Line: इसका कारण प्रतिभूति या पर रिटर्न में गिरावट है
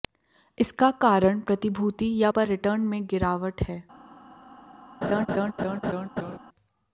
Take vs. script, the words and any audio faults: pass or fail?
fail